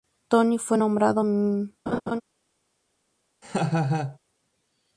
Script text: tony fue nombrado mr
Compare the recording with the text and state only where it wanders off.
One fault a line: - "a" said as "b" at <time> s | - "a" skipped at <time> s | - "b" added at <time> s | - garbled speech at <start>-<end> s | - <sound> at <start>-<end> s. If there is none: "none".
- laugh at 1.9-2.2 s
- laugh at 3.4-4.2 s